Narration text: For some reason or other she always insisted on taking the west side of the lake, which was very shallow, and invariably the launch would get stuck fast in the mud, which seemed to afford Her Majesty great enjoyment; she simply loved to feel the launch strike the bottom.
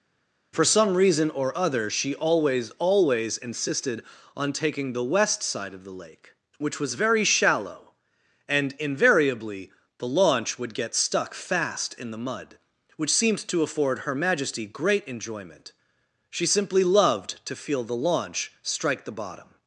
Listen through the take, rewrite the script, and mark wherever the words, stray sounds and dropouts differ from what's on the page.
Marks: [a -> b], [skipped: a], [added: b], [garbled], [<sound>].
For some reason or other she always [added: always] insisted on taking the west side of the lake, which was very shallow, and invariably the launch would get stuck fast in the mud, which seemed to afford Her Majesty great enjoyment; she simply loved to feel the launch strike the bottom.